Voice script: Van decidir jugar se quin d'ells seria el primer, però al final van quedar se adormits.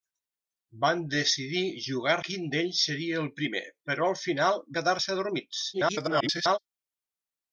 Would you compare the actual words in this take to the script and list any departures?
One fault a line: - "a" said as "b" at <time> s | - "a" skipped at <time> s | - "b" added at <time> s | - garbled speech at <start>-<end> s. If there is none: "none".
- "se" skipped at 2.1 s
- "van" skipped at 4.6 s
- garbled speech at 5.7-6.6 s